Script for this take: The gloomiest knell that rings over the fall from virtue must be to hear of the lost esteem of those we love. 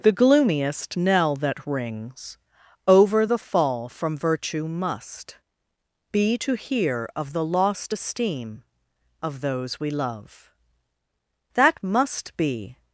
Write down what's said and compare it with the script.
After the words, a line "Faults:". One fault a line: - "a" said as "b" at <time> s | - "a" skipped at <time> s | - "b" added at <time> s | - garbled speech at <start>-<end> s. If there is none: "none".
The gloomiest knell that rings over the fall from virtue must be to hear of the lost esteem of those we love. That must be
Faults:
- "That must be" added at 11.5 s